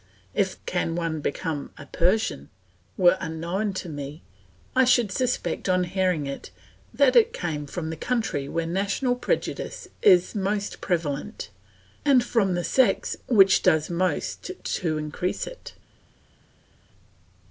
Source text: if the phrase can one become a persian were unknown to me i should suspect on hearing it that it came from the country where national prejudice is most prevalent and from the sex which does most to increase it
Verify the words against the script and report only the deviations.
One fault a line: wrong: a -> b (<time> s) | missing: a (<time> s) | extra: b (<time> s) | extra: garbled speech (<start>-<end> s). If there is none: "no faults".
missing: the phrase (0.6 s)